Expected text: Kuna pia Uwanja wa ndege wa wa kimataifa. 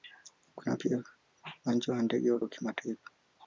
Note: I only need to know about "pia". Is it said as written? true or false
true